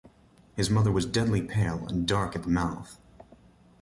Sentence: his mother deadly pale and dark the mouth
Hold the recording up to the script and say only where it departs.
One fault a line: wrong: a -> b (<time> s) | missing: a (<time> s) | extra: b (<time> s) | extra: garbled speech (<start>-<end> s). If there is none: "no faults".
extra: was (0.9 s)
extra: at (2.3 s)